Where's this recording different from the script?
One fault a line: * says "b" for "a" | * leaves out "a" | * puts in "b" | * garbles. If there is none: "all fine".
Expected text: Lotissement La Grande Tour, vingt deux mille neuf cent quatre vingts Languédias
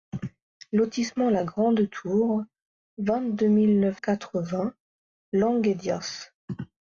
* leaves out "cent"